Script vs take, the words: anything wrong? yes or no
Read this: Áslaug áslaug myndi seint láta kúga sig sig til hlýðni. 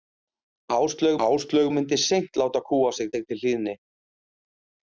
no